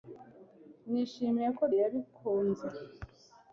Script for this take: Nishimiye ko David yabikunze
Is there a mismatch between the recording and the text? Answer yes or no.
yes